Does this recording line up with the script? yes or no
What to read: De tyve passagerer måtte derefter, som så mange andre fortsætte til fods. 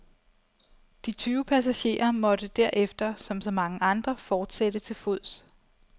yes